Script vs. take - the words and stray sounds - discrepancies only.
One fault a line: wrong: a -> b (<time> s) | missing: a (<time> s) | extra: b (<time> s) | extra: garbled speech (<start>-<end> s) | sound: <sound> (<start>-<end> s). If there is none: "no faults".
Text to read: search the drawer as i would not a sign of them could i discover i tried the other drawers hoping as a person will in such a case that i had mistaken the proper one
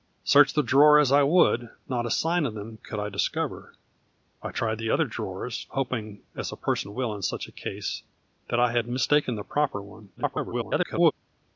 extra: garbled speech (10.2-11.1 s)